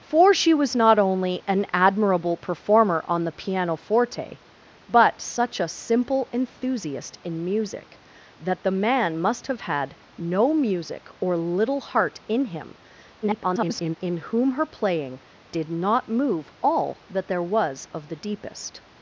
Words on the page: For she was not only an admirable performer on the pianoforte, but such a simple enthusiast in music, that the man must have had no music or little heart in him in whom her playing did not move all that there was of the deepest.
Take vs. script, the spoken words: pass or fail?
fail